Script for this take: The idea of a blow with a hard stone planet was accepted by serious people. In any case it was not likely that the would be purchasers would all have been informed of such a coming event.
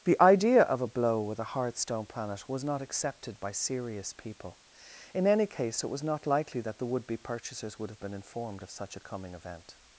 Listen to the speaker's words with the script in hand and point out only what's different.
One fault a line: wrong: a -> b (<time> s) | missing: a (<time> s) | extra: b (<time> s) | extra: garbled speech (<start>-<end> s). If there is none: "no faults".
extra: not (2.6 s)
missing: all (7.9 s)